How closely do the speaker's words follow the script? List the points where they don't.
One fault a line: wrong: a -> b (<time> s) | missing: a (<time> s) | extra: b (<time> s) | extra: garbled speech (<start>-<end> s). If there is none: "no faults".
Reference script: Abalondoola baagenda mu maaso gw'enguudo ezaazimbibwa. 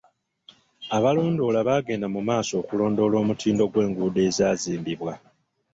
extra: okulondoola omutindo (2.6 s)